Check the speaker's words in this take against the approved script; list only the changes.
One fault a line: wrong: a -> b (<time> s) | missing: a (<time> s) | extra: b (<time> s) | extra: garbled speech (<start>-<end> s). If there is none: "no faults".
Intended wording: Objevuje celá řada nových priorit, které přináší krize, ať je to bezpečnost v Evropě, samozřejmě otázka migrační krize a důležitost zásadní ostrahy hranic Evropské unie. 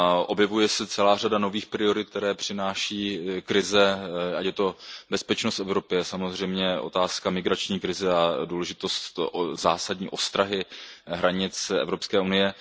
extra: se (0.7 s)